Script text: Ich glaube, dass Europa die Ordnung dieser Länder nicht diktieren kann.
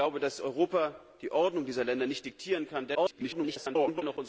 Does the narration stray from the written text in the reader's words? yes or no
yes